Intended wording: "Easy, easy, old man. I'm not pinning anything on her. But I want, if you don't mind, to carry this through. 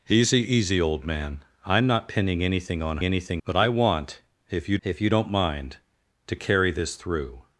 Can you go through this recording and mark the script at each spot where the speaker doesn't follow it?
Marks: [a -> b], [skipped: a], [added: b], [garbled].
"Easy, easy, old man. I'm not pinning anything on [her. -> anything] But I want, if you [added: if you] don't mind, to carry this through.